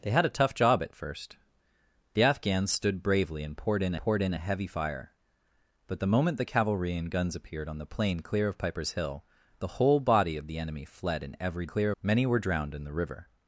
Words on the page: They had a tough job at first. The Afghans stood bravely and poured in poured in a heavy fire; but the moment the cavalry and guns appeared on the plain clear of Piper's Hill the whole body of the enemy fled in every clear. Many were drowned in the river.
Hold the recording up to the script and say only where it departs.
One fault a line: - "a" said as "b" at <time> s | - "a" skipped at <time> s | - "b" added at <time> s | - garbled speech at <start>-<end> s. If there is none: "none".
none